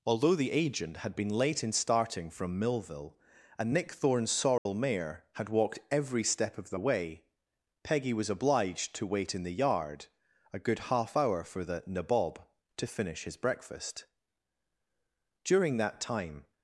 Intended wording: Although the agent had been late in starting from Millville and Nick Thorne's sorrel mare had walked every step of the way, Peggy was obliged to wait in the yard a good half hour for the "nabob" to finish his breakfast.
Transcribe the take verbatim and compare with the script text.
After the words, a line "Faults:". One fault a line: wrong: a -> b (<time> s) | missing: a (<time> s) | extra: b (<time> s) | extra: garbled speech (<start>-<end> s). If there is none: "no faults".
Although the agent had been late in starting from Millville and Nick Thorne's sorrel mare had walked every step of the way, Peggy was obliged to wait in the yard a good half hour for the "nabob" to finish his breakfast. During that time
Faults:
extra: During that time (15.4 s)